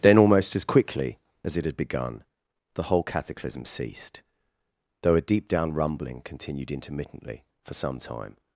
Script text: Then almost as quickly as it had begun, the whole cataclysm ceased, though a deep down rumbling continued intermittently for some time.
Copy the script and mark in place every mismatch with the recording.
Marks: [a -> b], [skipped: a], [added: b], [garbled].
Then almost as quickly as it had begun, the whole cataclysm ceased, though a deep down rumbling continued intermittently for some time.